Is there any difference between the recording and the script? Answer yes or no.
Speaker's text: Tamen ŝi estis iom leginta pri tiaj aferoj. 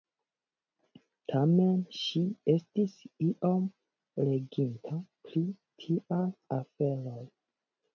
no